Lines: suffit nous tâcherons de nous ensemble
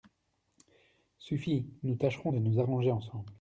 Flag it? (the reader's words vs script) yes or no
yes